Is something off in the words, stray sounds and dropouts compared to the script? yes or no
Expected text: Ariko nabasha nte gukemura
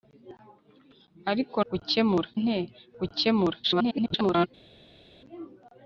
yes